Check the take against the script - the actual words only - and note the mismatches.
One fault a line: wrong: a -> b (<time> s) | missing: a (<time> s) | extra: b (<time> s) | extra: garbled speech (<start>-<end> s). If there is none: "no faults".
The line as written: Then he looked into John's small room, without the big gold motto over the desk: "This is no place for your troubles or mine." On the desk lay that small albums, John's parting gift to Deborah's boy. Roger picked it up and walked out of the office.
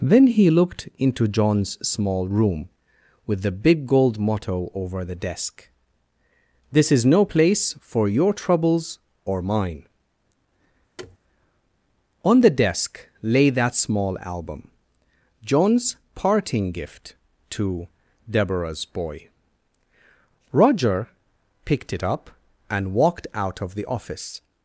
wrong: without -> with (3.3 s)
wrong: albums -> album (14.2 s)